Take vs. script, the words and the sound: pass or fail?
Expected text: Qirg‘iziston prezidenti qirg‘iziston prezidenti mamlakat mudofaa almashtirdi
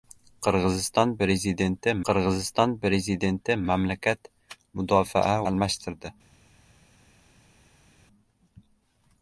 pass